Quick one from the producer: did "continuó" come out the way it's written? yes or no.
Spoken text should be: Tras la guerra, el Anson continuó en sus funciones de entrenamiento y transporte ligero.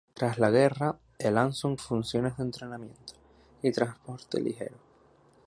no